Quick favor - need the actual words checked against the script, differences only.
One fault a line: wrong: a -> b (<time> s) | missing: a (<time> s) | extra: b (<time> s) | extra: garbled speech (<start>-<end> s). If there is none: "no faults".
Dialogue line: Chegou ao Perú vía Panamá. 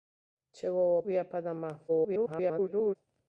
missing: Perú (1.0 s)
extra: garbled speech (1.9-3.0 s)